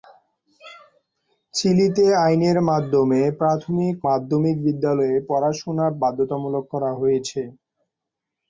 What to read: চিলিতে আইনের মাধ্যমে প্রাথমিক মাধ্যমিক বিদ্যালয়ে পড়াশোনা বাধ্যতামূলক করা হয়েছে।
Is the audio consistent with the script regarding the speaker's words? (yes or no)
yes